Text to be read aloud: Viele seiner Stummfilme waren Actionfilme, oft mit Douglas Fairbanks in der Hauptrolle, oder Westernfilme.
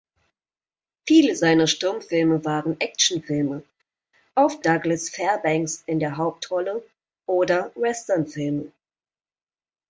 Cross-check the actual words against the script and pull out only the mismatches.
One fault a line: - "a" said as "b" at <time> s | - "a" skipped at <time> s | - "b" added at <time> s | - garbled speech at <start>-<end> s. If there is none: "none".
- "mit" skipped at 4.6 s